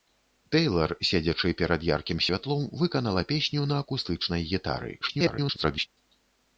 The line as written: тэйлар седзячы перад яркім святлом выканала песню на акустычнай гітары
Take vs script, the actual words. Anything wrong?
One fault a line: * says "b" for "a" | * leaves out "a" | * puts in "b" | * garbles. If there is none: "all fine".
* garbles